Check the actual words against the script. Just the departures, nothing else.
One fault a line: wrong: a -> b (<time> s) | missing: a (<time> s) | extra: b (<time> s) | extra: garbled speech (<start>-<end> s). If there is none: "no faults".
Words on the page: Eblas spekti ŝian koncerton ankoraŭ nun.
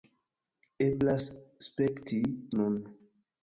missing: ŝian koncerton ankoraŭ (2.2 s)